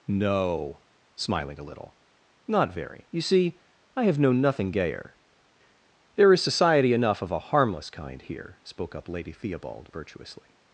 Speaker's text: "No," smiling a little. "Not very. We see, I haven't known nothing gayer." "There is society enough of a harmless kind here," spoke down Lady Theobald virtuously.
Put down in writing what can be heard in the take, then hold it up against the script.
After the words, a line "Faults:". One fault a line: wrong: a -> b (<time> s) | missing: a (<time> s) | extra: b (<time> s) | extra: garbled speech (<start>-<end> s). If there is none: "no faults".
"No," smiling a little. "Not very. You see, I have known nothing gayer." "There is society enough of a harmless kind here," spoke up Lady Theobald virtuously.
Faults:
wrong: We -> You (3.1 s)
wrong: haven't -> have (4.0 s)
wrong: down -> up (9.0 s)